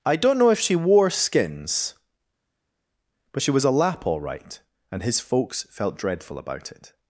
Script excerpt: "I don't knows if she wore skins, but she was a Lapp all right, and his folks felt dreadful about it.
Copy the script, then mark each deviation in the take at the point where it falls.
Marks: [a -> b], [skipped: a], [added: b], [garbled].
"I don't [knows -> know] if she wore skins, but she was a Lapp all right, and his folks felt dreadful about it.